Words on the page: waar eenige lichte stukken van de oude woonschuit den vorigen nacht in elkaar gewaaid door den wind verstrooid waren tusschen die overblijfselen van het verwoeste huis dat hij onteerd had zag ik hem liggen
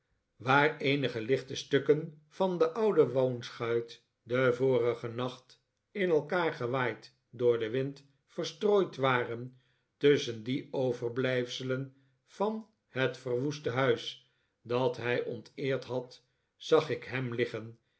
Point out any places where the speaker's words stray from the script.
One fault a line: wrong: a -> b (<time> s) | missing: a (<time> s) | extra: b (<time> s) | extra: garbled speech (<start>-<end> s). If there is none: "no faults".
no faults